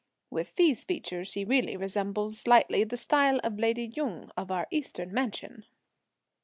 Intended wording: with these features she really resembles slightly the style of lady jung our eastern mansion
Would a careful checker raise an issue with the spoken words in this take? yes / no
yes